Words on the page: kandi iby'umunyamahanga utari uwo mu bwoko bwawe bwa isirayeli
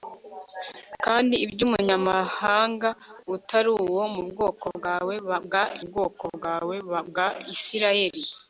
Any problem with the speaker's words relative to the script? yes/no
yes